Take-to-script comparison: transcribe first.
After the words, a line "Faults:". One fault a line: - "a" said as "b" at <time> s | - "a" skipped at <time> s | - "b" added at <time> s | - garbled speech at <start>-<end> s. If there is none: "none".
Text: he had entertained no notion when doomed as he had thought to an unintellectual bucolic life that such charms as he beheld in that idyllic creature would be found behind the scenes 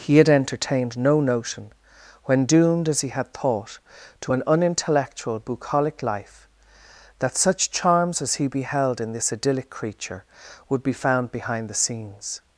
he had entertained no notion when doomed as he had thought to an unintellectual bucolic life that such charms as he beheld in this idyllic creature would be found behind the scenes
Faults:
- "that" said as "this" at 9.1 s